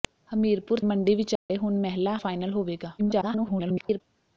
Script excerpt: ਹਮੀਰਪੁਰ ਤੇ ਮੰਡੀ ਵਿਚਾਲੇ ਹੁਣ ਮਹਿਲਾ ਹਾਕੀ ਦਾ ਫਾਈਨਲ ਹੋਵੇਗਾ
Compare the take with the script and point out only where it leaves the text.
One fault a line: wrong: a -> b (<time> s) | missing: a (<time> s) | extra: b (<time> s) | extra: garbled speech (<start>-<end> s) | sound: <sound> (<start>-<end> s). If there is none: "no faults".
missing: ਤੇ (0.8 s)
sound: dropout (1.4-1.5 s)
missing: ਹਾਕੀ ਦਾ (2.2 s)
extra: garbled speech (3.0-4.0 s)